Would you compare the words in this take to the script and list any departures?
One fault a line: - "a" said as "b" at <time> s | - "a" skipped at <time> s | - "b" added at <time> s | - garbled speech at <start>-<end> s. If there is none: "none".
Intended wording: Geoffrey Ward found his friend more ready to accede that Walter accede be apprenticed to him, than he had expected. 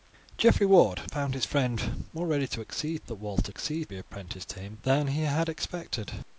none